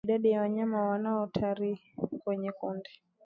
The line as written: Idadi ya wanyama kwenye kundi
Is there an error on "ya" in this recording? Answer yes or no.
no